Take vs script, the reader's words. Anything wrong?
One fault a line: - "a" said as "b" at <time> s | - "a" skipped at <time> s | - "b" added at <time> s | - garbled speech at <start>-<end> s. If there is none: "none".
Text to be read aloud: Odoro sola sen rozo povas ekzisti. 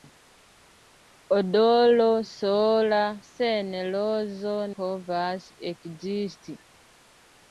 none